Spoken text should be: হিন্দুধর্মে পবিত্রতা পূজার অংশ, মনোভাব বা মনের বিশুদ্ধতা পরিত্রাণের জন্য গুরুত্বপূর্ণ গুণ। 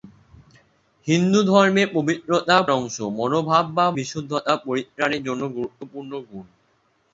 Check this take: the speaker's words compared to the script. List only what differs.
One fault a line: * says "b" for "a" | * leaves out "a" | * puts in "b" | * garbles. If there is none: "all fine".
* leaves out "পূজার"
* leaves out "মনের"